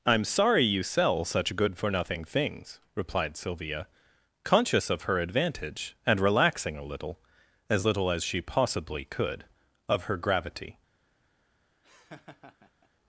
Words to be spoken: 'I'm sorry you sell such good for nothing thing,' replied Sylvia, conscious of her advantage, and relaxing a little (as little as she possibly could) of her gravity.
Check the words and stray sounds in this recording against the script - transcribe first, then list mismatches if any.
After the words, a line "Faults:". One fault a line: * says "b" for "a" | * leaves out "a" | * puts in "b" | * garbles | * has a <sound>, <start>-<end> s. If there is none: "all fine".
'I'm sorry you sell such good for nothing things,' replied Sylvia, conscious of her advantage, and relaxing a little (as little as she possibly could) of her gravity.
Faults:
* says "things" for "thing"
* has a laugh, 11.8-12.9 s